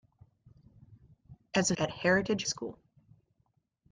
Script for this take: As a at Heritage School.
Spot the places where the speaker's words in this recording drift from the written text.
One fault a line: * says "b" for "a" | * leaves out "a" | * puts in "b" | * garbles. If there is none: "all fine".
all fine